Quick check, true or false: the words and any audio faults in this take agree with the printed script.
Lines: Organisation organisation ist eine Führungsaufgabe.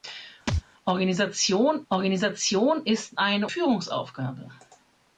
false